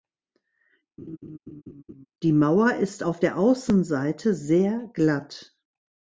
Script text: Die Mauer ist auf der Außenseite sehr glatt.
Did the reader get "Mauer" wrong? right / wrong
right